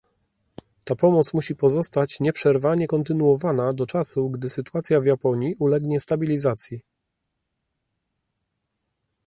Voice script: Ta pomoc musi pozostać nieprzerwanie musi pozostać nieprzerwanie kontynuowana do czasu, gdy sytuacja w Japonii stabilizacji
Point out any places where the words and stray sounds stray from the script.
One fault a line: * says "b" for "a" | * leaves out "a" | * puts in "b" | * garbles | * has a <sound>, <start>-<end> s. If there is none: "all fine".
* leaves out "musi pozostać nieprzerwanie"
* puts in "ulegnie"